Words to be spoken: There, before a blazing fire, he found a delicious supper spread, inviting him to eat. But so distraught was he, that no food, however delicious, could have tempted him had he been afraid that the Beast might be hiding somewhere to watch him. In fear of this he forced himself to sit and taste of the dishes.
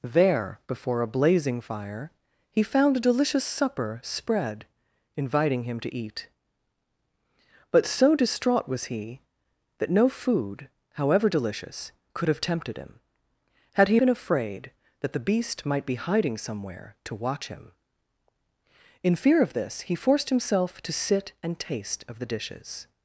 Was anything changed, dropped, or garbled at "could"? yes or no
no